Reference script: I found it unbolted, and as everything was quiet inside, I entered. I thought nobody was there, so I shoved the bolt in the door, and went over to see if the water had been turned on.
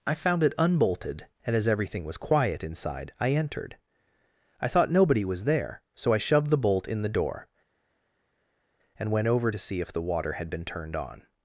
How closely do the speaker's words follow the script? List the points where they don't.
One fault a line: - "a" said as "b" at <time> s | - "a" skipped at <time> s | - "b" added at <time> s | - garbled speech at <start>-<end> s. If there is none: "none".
none